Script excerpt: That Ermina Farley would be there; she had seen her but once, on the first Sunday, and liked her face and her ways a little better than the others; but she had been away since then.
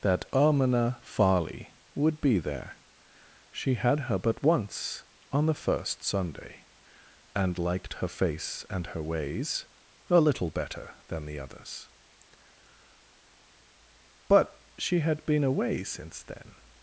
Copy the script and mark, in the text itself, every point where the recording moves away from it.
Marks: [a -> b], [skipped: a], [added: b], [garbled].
That Ermina Farley would be there; she had [skipped: seen] her but once, on the first Sunday, and liked her face and her ways a little better than the others; but she had been away since then.